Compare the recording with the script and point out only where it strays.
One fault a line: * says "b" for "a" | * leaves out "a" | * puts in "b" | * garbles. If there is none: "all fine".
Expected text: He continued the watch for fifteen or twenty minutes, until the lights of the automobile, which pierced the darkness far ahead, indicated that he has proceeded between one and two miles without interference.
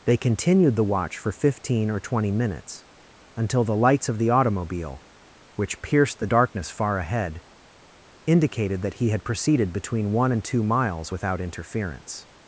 * says "They" for "He"
* says "had" for "has"